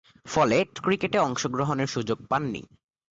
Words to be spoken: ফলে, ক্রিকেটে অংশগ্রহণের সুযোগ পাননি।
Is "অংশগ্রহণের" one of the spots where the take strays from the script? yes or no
no